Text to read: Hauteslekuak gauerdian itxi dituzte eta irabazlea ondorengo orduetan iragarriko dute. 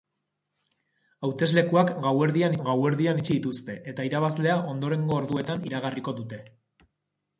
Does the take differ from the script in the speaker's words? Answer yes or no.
yes